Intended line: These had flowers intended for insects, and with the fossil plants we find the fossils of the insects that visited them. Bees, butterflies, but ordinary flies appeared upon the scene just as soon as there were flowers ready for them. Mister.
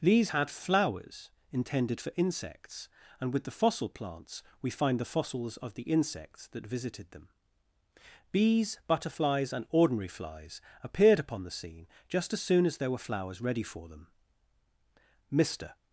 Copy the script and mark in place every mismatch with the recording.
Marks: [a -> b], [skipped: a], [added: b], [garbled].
These had flowers intended for insects, and with the fossil plants we find the fossils of the insects that visited them. Bees, butterflies, [but -> and] ordinary flies appeared upon the scene just as soon as there were flowers ready for them. Mister.